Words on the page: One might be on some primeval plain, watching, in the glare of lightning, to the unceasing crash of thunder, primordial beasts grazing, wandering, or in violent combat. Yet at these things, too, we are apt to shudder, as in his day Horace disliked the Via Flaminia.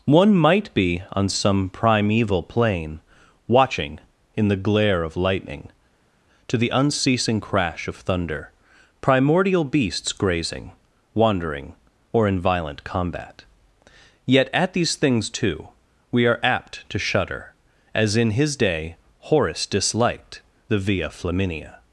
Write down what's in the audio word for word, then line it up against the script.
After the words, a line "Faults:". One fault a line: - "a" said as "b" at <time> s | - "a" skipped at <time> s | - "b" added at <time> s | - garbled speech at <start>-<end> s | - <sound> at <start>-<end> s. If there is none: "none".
One might be on some primeval plain, watching, in the glare of lightning, to the unceasing crash of thunder, primordial beasts grazing, wandering, or in violent combat. Yet at these things, too, we are apt to shudder, as in his day Horace disliked the Via Flaminia.
Faults:
none